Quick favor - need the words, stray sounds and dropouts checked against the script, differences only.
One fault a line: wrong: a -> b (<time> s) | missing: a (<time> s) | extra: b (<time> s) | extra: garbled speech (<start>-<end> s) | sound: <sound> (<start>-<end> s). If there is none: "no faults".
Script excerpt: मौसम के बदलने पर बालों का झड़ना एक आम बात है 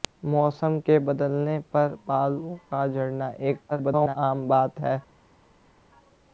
extra: garbled speech (3.7-4.2 s)